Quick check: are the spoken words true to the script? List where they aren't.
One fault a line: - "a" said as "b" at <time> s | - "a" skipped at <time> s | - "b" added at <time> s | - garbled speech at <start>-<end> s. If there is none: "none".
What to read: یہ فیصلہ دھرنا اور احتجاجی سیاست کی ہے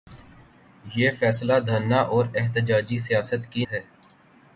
none